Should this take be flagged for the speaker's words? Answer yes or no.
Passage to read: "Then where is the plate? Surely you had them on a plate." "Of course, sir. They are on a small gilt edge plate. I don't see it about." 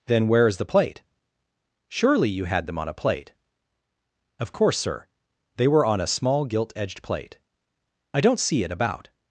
yes